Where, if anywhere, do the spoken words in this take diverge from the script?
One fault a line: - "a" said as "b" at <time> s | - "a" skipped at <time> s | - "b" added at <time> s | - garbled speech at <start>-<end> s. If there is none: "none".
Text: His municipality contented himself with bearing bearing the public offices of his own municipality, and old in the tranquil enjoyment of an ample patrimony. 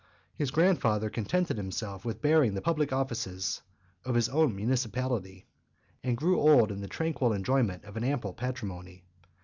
- "municipality" said as "grandfather" at 0.5 s
- "bearing" skipped at 2.5 s
- "grew" added at 6.2 s